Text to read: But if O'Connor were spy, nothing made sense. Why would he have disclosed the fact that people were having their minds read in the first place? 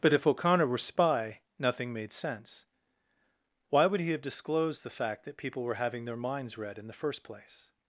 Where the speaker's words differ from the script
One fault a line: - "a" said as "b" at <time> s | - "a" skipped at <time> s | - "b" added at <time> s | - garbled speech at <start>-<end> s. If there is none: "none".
none